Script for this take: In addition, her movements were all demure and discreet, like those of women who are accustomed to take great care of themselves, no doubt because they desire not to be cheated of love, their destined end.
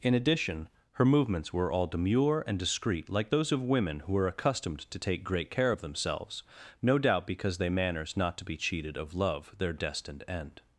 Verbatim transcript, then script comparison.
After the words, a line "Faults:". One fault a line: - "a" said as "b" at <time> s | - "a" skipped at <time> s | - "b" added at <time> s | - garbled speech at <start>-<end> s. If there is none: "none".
In addition, her movements were all demure and discreet, like those of women who are accustomed to take great care of themselves, no doubt because they manners not to be cheated of love, their destined end.
Faults:
- "desire" said as "manners" at 7.7 s